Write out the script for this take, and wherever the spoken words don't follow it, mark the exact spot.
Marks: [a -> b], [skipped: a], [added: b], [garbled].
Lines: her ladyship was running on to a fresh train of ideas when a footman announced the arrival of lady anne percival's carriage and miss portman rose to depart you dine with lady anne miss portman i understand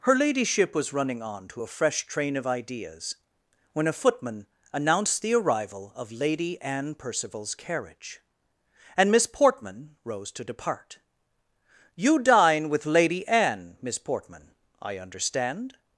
her ladyship was running on to a fresh train of ideas when a footman announced the arrival of lady anne percival's carriage and miss portman rose to depart you dine with lady anne miss portman i understand